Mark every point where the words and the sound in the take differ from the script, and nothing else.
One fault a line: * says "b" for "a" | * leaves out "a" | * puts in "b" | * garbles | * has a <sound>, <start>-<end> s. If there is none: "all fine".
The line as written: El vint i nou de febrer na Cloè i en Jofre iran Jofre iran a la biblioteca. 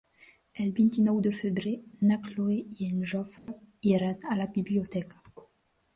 * has a dropout, 3.4-3.5 s
* leaves out "Jofre iran"